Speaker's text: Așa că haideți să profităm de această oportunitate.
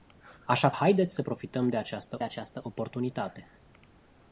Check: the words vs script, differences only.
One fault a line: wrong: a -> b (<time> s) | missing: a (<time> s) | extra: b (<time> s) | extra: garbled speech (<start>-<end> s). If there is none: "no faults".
missing: că (0.7 s)
extra: această (2.2 s)